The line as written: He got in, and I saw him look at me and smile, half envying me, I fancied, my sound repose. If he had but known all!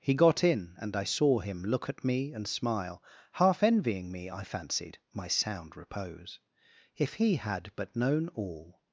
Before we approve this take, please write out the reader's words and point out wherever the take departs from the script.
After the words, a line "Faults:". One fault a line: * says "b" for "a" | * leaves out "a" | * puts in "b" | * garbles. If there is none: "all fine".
He got in, and I saw him look at me and smile, half envying me, I fancied, my sound repose. If he had but known all!
Faults:
all fine